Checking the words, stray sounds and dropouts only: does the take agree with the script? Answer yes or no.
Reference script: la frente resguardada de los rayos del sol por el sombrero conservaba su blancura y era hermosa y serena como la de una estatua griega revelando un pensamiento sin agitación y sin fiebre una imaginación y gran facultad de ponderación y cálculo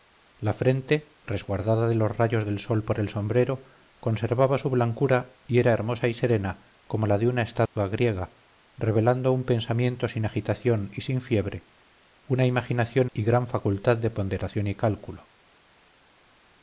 no